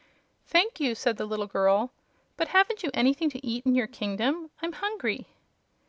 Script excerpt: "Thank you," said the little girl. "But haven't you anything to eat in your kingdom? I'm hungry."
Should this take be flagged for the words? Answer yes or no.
no